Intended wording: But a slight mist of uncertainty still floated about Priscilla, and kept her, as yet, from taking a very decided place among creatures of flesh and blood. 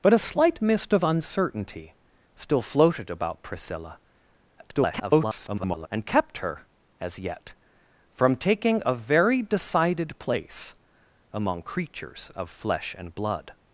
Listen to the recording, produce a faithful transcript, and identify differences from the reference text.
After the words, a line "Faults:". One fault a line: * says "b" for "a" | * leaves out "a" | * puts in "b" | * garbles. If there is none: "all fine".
But a slight mist of uncertainty still floated about Priscilla, [garbled] and kept her, as yet, from taking a very decided place among creatures of flesh and blood.
Faults:
* garbles